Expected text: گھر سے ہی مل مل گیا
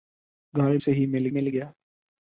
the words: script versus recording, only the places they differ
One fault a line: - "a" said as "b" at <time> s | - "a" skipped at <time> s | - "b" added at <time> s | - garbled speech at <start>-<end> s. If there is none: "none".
none